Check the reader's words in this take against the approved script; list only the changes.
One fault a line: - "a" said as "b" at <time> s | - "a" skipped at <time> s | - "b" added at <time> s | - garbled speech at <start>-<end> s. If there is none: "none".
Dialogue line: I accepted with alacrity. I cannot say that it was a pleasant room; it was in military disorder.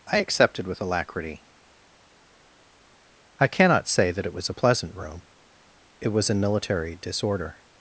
none